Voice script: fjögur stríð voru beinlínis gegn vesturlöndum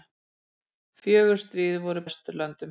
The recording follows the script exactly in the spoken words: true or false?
false